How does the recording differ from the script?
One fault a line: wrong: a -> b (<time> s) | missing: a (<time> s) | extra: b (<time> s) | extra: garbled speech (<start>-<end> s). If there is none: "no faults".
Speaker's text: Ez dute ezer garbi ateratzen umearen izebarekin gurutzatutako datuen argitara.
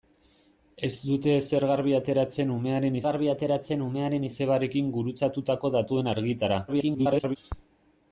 extra: garbi ateratzen umearen (3.1 s)
extra: garbled speech (6.7-7.4 s)